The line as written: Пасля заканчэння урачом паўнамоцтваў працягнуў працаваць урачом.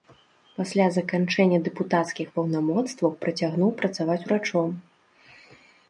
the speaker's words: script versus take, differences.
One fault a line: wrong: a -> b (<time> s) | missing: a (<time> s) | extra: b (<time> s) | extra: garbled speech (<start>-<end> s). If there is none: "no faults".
wrong: урачом -> дэпутацкіх (1.7 s)